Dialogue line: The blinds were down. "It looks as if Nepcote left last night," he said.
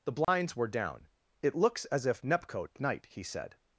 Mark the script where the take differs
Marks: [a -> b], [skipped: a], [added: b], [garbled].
The blinds were down. "It looks as if Nepcote [skipped: left last] night," he said.